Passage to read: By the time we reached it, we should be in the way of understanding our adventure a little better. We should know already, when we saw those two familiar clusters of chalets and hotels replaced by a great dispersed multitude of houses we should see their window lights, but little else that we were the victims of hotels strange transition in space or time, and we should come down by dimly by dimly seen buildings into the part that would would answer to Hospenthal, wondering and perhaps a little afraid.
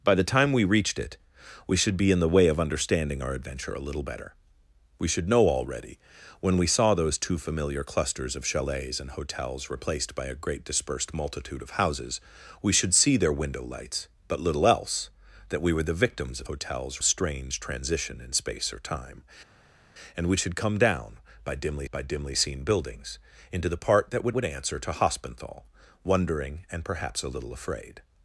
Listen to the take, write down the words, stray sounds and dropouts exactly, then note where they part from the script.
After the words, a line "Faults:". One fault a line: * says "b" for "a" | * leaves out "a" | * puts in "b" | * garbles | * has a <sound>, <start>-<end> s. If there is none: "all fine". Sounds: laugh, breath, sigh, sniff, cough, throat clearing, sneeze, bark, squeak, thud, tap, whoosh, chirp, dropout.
By the time we reached it, we should be in the way of understanding our adventure a little better. We should know already, when we saw those two familiar clusters of chalets and hotels replaced by a great dispersed multitude of houses we should see their window lights, but little else that we were the victims of hotels strange transition in space or time, and we should come down by dimly by dimly seen buildings into the part that would would answer to Hospenthal, wondering and perhaps a little afraid.
Faults:
all fine